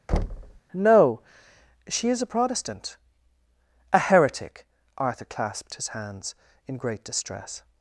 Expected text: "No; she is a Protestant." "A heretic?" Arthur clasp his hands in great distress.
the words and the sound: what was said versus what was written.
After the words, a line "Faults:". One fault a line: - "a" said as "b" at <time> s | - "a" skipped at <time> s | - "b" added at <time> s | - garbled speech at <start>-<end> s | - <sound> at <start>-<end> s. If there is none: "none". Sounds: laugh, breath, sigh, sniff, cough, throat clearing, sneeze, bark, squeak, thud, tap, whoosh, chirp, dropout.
"No; she is a Protestant." "A heretic?" Arthur clasped his hands in great distress.
Faults:
- thud at 0.1-0.6 s
- "clasp" said as "clasped" at 5.2 s